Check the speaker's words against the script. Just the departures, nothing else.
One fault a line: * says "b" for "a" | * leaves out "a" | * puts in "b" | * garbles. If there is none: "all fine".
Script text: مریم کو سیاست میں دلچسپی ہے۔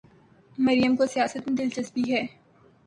all fine